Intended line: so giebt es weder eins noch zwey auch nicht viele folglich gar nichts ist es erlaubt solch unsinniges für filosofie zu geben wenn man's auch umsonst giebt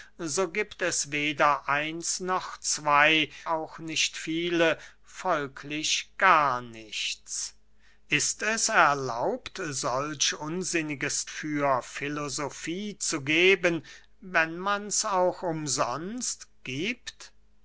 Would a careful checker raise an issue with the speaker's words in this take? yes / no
no